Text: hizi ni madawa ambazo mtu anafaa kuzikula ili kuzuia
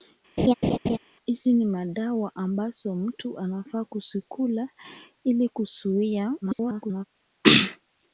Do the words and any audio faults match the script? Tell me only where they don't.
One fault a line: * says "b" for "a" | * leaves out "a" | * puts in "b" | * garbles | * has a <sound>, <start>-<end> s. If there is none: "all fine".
* has a laugh, 0.4-1.0 s
* garbles